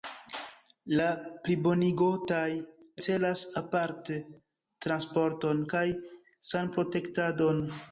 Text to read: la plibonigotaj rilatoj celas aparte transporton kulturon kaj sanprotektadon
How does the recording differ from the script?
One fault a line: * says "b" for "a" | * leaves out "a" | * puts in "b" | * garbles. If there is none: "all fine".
* leaves out "rilatoj"
* leaves out "kulturon"